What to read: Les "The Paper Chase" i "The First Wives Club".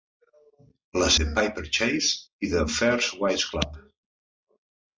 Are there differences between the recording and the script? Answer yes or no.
no